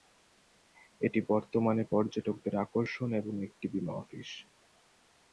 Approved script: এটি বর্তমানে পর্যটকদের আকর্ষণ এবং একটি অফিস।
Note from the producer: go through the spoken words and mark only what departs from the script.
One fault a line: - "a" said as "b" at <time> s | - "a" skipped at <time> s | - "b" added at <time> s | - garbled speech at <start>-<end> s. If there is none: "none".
- "বীমা" added at 3.7 s